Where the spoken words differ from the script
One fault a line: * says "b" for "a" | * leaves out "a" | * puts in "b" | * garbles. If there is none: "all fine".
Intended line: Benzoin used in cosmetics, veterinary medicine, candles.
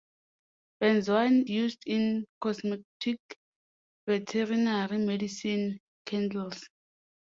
all fine